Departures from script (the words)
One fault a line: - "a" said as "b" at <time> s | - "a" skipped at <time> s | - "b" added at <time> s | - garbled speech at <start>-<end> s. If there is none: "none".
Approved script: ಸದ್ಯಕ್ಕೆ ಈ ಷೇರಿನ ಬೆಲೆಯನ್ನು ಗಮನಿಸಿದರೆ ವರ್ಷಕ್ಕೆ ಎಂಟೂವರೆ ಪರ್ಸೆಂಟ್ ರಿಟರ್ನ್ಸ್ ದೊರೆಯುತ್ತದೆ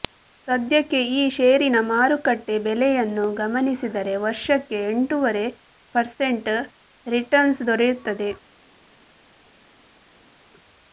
- "ಮಾರುಕಟ್ಟೆ" added at 1.9 s